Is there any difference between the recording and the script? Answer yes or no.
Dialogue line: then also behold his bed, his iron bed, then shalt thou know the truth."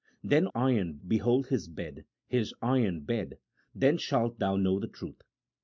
yes